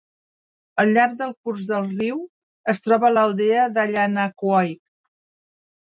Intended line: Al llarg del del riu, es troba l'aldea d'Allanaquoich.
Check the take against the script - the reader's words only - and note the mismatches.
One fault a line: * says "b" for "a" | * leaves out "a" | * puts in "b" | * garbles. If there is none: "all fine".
* puts in "curs"